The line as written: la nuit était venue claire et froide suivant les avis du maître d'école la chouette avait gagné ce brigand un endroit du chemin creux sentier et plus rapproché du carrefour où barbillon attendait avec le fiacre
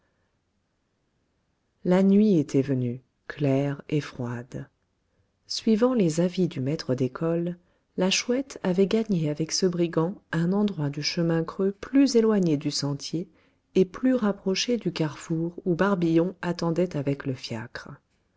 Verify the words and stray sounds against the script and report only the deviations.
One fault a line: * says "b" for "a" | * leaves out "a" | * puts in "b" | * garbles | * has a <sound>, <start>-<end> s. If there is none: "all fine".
* puts in "avec"
* puts in "plus éloigné du"